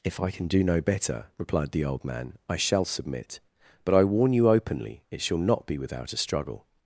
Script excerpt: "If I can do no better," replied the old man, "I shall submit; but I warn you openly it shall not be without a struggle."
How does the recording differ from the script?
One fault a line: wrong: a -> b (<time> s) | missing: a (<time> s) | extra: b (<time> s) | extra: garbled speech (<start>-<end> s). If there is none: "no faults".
no faults